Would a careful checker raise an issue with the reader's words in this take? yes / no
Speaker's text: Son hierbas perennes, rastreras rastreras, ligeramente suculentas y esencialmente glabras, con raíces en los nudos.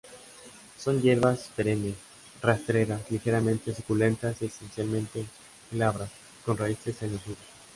yes